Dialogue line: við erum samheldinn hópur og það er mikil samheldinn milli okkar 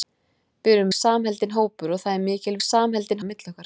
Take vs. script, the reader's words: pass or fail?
pass